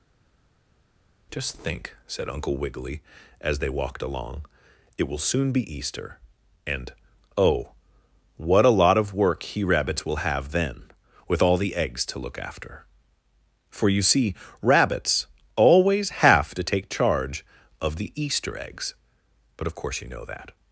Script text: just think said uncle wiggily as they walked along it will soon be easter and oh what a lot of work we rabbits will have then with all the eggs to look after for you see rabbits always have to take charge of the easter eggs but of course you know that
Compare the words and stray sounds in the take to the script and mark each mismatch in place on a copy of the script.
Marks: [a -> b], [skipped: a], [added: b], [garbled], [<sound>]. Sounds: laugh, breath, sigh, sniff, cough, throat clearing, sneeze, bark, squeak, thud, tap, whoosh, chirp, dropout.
just think said uncle wiggily as they walked along it will soon be easter and oh what a lot of work [we -> he] rabbits will have then with all the eggs to look after for you see rabbits always have to take charge of the easter eggs but of course you know that